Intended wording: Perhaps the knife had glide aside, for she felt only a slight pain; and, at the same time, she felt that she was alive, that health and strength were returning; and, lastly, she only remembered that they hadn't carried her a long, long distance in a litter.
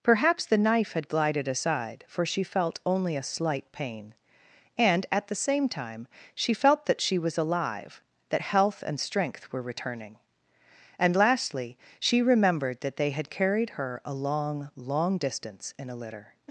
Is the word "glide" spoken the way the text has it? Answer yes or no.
no